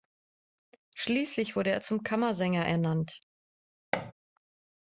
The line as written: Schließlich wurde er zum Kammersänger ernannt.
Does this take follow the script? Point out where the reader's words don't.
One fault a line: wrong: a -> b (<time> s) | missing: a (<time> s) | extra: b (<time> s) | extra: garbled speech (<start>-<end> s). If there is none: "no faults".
no faults